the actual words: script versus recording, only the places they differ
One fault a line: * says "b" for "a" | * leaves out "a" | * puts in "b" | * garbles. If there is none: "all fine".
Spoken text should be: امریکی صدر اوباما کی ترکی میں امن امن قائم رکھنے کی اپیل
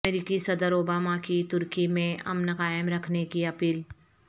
* leaves out "امن"